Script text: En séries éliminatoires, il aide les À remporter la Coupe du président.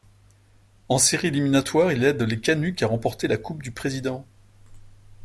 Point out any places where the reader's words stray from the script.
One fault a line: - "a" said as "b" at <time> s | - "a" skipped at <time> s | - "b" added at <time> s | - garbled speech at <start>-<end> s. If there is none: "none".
- "Canucks" added at 2.4 s